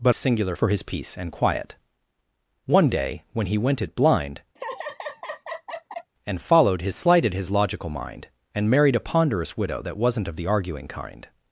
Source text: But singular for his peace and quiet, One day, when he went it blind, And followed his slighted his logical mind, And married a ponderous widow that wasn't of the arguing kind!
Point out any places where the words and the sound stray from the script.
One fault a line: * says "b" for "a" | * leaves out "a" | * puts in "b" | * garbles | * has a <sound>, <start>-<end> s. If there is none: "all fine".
* has a laugh, 4.6-6.1 s